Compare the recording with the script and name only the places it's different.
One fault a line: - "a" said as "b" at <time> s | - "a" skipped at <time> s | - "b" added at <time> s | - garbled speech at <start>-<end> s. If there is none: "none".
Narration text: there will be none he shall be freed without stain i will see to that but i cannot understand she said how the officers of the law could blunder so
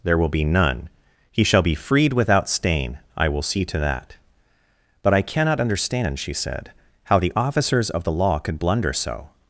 none